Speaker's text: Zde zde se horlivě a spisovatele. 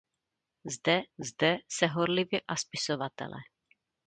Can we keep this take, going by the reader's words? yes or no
yes